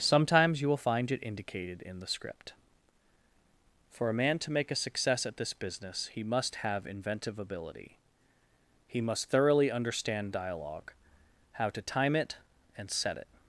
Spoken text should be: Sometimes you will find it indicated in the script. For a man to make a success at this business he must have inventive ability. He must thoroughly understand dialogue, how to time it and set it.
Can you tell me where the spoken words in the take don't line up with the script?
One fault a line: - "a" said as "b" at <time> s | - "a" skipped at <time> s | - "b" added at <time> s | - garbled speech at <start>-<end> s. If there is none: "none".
none